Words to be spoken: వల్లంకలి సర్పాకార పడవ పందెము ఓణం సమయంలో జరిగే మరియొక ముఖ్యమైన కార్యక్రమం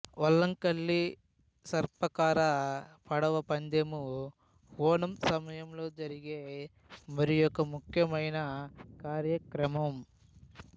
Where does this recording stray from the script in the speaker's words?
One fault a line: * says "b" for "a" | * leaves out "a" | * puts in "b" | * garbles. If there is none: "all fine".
all fine